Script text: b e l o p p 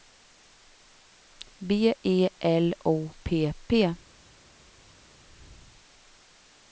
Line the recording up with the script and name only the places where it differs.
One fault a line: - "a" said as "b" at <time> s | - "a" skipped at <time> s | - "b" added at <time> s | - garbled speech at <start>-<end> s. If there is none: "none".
none